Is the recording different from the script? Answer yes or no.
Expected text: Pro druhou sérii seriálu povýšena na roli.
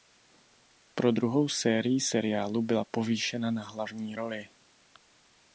yes